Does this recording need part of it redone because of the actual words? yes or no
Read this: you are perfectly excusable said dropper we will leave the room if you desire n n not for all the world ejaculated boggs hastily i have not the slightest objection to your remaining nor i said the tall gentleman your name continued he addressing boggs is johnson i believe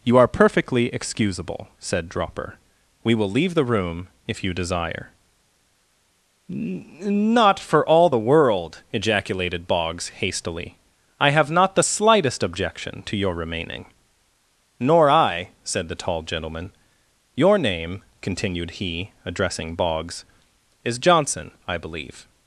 yes